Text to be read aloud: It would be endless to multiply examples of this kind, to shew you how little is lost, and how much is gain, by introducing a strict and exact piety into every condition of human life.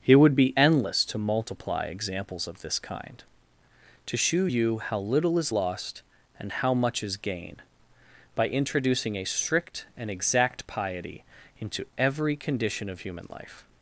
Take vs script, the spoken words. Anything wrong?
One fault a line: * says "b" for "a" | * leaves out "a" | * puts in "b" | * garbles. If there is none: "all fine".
all fine